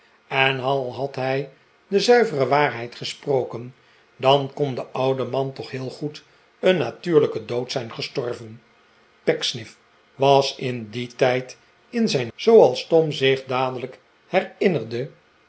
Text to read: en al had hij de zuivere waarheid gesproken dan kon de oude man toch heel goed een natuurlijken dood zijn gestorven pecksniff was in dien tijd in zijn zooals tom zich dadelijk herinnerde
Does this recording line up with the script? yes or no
yes